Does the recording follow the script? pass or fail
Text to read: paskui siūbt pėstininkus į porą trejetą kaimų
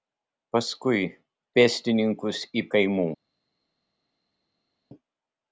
fail